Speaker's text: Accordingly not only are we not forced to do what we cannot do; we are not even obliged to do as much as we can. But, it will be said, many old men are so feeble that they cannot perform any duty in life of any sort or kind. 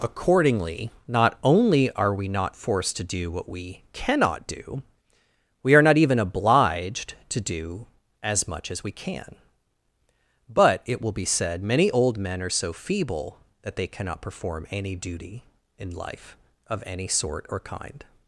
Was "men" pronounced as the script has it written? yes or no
yes